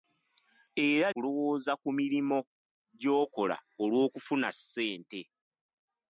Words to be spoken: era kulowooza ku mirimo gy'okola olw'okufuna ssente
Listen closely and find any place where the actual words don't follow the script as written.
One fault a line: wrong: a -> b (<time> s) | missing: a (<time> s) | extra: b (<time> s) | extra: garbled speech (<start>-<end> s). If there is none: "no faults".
no faults